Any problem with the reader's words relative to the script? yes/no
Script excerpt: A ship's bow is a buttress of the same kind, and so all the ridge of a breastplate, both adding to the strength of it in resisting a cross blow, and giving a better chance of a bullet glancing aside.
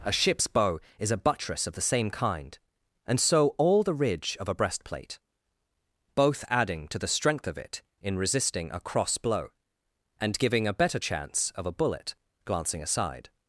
no